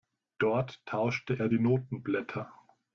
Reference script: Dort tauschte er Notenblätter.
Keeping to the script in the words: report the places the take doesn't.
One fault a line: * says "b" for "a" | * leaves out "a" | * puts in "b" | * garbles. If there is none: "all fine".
* puts in "die"